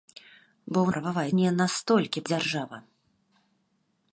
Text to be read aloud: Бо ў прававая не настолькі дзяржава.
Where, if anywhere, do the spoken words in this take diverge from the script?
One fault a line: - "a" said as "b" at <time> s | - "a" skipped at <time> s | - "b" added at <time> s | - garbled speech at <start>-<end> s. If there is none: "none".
none